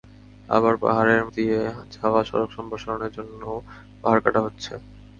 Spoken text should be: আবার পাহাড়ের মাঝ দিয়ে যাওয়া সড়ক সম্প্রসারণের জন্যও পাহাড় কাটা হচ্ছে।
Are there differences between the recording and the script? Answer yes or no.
yes